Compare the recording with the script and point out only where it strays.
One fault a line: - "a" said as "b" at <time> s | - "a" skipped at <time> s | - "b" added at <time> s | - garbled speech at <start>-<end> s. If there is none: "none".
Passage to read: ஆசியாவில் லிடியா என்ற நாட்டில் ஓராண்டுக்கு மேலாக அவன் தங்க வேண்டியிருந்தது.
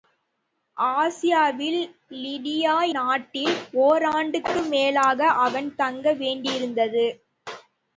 - "என்ற" skipped at 2.7 s